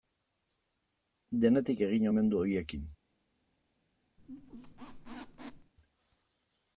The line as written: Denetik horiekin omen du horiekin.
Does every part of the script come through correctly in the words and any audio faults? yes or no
no